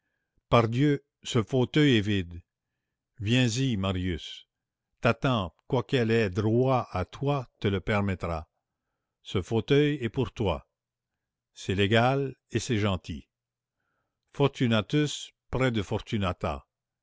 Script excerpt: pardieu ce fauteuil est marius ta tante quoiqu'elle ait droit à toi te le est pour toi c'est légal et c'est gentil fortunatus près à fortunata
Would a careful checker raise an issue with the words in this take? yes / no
yes